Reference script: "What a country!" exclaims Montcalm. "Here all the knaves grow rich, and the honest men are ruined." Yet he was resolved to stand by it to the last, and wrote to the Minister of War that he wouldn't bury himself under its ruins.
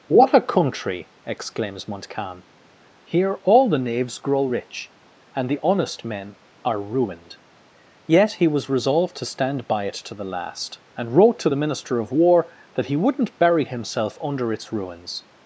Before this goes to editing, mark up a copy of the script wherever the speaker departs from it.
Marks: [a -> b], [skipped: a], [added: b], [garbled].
"What a country!" exclaims Montcalm. "Here all the knaves grow rich, and the honest men are ruined." Yet he was resolved to stand by it to the last, and wrote to the Minister of War that he wouldn't bury himself under its ruins.